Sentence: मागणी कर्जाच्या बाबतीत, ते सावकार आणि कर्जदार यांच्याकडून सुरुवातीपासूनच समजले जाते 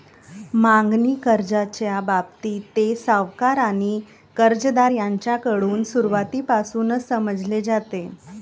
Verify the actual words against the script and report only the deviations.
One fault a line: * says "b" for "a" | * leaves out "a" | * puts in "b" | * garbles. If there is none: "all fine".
all fine